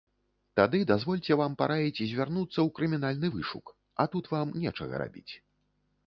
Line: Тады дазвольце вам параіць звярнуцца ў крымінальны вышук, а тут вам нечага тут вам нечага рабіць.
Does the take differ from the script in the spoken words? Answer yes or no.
yes